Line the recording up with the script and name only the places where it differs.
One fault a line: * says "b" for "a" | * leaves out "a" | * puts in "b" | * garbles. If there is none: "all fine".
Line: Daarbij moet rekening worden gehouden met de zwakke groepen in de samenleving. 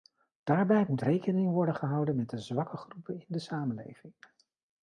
all fine